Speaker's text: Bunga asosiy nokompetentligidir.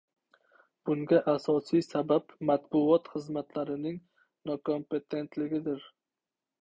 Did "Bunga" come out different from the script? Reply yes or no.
no